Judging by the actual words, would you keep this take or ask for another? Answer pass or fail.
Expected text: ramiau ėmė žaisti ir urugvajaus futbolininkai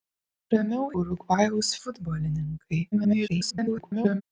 fail